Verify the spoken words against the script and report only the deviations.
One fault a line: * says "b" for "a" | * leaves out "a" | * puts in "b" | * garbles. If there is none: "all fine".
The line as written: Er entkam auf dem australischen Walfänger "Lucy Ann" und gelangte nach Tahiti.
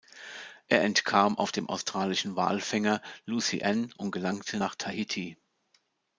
all fine